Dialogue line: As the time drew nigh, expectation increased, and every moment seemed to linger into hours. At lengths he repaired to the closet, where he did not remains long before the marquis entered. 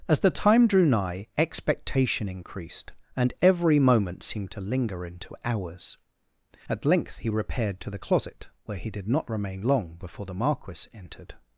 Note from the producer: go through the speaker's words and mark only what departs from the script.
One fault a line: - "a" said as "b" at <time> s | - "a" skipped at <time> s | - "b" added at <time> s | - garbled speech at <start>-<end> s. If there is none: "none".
- "lengths" said as "length" at 6.8 s
- "remains" said as "remain" at 9.3 s